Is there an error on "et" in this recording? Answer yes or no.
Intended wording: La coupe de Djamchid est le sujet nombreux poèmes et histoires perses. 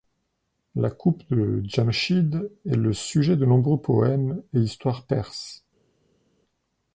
no